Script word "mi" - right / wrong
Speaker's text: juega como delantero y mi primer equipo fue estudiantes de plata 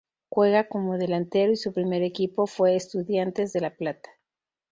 wrong